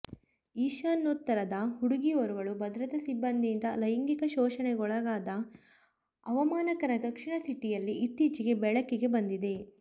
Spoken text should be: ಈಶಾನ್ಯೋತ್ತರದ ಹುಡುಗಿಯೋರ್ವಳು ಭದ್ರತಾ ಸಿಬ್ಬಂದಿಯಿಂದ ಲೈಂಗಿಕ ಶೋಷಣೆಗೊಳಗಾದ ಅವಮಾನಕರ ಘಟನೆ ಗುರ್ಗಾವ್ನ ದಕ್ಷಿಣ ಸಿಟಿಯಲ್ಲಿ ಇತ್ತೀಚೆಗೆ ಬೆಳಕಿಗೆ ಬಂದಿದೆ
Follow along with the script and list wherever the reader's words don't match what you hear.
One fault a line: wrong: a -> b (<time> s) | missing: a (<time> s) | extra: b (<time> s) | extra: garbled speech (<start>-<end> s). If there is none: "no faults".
missing: ಘಟನೆ ಗುರ್ಗಾವ್ನ (7.0 s)